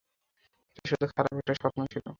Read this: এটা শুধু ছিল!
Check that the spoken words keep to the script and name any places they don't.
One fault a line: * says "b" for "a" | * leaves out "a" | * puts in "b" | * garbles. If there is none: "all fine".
* puts in "খারাপ একটা স্বপ্ন"